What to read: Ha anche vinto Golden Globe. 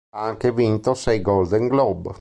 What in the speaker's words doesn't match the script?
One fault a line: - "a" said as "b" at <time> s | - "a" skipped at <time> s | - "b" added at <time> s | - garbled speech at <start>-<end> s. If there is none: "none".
- "sei" added at 0.9 s